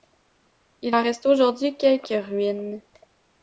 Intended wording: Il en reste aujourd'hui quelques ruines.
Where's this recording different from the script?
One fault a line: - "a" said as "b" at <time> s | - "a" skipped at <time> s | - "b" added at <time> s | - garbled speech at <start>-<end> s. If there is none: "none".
none